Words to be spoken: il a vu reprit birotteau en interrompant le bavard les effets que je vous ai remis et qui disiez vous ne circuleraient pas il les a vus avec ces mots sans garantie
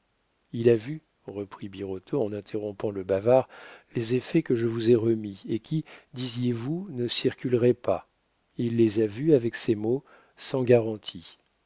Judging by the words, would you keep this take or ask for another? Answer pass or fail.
pass